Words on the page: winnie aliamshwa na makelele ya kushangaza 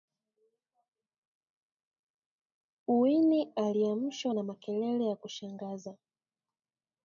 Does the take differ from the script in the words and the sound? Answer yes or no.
no